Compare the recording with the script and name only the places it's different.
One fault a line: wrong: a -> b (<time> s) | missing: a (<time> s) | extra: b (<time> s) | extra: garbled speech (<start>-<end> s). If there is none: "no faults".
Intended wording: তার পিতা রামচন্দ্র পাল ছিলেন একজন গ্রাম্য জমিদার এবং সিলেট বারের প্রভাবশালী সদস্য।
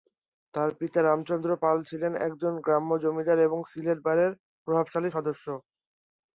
no faults